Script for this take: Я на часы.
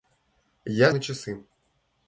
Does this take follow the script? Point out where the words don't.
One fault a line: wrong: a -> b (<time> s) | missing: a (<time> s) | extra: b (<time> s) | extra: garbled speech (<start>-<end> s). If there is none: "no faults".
no faults